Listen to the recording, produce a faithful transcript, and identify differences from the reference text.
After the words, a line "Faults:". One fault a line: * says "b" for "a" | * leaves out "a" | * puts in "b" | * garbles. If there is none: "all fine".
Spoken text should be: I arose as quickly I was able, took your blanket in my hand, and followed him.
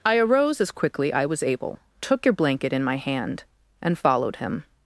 I arose as quickly I was able, took your blanket in my hand, and followed him.
Faults:
all fine